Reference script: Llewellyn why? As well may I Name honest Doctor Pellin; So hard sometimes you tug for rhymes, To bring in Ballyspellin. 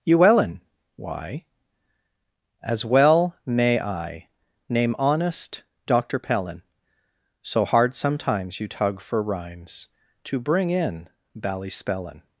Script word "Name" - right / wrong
right